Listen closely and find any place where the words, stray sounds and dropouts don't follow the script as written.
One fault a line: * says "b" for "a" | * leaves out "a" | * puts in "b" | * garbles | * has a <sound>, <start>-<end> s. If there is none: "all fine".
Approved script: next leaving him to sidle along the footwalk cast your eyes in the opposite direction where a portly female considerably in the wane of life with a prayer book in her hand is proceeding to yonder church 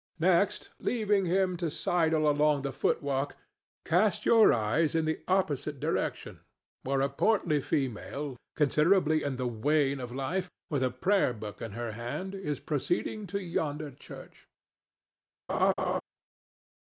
* has a laugh, 15.5-16.0 s